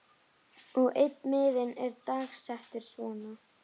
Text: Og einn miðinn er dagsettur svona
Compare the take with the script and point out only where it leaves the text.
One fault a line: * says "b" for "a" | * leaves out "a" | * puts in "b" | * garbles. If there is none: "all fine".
all fine